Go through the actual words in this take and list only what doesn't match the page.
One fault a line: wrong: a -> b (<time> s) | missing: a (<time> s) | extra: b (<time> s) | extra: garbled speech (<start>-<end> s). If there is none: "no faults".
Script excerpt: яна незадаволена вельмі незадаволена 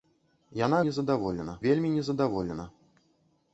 no faults